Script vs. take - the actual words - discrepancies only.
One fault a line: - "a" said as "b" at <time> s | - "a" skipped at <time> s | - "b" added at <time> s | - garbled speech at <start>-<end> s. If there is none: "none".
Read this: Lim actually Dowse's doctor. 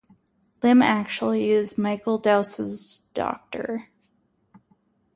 - "is Michael" added at 1.5 s